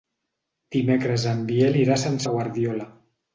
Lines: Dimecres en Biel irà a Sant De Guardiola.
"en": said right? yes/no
yes